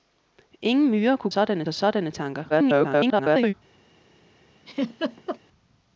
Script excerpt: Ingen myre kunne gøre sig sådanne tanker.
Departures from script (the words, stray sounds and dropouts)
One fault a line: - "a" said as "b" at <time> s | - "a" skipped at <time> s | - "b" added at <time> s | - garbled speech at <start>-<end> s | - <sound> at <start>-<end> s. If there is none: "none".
- "gøre" said as "sådanne" at 1.3 s
- garbled speech at 2.5-3.5 s
- laugh at 4.7-5.4 s